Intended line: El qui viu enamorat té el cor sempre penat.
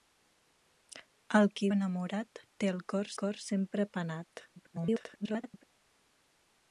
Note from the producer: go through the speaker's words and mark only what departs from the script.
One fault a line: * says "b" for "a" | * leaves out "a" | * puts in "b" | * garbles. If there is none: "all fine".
* leaves out "viu"
* puts in "cor"
* garbles